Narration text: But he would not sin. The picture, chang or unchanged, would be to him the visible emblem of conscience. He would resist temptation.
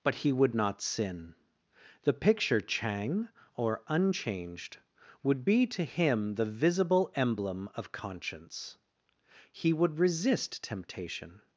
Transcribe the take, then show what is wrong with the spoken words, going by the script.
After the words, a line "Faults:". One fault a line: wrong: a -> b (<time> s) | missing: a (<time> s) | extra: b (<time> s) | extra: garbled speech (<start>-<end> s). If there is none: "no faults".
But he would not sin. The picture, chang or unchanged, would be to him the visible emblem of conscience. He would resist temptation.
Faults:
no faults